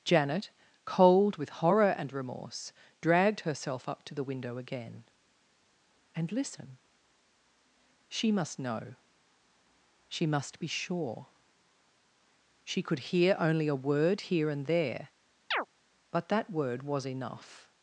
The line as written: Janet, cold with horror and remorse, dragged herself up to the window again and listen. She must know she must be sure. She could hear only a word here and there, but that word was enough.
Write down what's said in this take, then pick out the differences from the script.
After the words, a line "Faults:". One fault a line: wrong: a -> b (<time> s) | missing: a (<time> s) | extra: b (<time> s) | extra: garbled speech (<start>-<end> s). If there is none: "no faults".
Janet, cold with horror and remorse, dragged herself up to the window again and listen. She must know she must be sure. She could hear only a word here and there, but that word was enough.
Faults:
no faults